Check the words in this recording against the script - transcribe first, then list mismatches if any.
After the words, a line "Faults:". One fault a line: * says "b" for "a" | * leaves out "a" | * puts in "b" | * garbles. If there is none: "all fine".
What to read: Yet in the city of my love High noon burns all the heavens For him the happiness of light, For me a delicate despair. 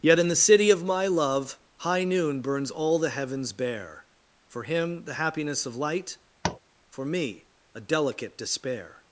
Yet in the city of my love High noon burns all the heavens bare For him the happiness of light, For me a delicate despair.
Faults:
* puts in "bare"